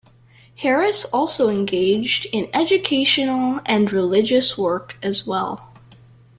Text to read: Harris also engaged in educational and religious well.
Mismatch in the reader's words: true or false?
true